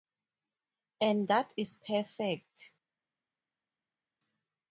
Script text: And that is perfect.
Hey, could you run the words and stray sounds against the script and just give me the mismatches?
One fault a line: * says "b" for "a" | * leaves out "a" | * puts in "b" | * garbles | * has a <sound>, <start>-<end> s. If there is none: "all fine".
all fine